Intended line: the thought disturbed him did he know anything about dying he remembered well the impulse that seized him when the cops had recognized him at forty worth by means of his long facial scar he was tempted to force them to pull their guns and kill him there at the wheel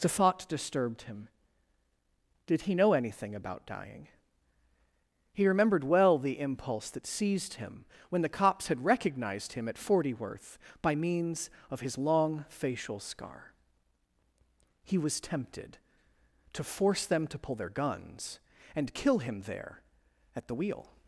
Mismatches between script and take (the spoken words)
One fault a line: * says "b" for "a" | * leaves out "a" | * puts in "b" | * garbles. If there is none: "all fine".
all fine